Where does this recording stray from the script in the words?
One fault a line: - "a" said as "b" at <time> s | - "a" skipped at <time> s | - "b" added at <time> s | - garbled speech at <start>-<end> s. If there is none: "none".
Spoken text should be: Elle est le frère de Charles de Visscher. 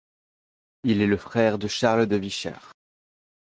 - "Elle" said as "Il" at 0.8 s